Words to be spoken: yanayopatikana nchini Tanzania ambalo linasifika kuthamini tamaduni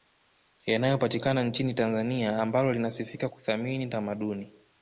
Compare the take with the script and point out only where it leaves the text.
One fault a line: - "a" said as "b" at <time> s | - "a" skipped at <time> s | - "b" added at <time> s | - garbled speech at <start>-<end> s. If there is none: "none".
none